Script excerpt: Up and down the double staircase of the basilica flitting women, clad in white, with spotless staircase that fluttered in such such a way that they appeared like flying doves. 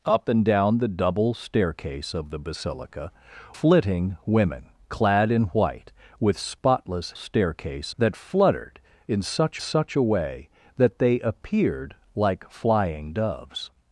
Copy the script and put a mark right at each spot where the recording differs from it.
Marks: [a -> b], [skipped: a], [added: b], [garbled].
Up and down the double staircase of the basilica flitting women, clad in white, with spotless staircase that fluttered in such such a way that they appeared like flying doves.